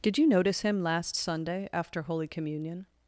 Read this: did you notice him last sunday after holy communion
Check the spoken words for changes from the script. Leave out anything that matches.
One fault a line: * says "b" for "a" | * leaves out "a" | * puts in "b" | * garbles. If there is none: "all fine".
all fine